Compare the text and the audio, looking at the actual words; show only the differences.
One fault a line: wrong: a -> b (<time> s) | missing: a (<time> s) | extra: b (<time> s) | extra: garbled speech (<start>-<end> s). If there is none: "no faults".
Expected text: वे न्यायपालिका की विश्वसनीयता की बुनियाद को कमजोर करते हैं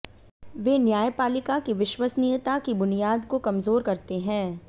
no faults